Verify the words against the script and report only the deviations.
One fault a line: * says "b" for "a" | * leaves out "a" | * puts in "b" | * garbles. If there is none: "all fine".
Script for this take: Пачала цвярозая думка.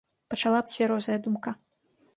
all fine